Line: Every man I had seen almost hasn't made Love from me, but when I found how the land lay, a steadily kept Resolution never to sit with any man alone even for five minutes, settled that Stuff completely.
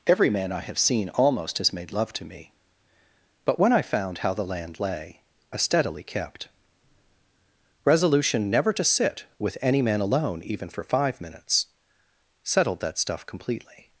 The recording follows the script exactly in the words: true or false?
false